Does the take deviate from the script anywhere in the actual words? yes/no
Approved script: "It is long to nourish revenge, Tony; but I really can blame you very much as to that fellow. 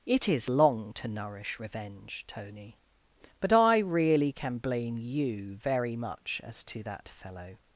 no